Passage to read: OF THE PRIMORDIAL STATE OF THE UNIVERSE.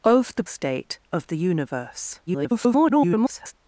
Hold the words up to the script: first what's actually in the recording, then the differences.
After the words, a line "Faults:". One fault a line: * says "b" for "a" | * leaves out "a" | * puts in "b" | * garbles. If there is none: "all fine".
OF THE STATE OF THE UNIVERSE. [garbled]
Faults:
* leaves out "PRIMORDIAL"
* garbles